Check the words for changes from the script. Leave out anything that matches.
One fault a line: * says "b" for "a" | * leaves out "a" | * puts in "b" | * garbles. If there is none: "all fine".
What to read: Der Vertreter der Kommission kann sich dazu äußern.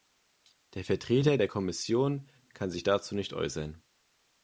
* puts in "nicht"